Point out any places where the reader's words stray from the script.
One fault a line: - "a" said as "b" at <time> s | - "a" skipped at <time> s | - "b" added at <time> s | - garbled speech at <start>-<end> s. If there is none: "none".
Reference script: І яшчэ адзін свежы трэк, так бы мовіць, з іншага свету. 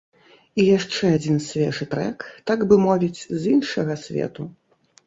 none